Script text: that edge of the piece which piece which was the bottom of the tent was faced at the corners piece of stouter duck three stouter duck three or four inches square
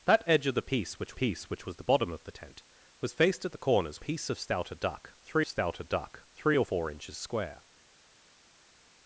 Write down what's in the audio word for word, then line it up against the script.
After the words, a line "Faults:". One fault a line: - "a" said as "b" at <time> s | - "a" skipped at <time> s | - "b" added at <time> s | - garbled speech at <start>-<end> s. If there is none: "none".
that edge of the piece which piece which was the bottom of the tent was faced at the corners piece of stouter duck three stouter duck three or four inches square
Faults:
none